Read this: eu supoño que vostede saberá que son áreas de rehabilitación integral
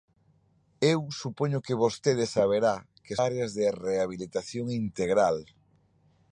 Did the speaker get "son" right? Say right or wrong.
wrong